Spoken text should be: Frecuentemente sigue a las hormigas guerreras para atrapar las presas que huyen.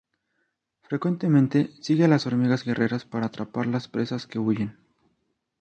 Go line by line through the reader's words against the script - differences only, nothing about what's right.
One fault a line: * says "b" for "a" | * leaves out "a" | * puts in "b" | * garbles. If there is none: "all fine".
all fine